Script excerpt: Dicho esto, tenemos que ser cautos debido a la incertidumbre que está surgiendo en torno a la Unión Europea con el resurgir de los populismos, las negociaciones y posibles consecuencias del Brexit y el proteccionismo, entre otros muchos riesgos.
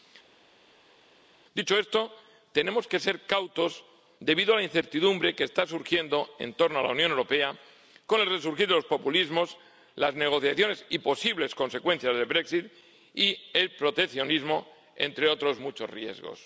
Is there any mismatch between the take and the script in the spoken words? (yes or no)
no